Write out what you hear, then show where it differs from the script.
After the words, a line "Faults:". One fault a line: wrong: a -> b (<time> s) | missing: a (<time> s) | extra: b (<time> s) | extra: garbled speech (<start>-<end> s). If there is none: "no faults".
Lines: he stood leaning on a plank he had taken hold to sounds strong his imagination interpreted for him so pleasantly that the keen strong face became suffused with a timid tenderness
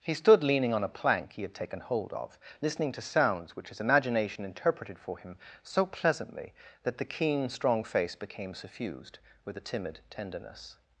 he stood leaning on a plank he had taken hold of listening to sounds which his imagination interpreted for him so pleasantly that the keen strong face became suffused with a timid tenderness
Faults:
extra: of listening (2.1 s)
wrong: strong -> which (3.5 s)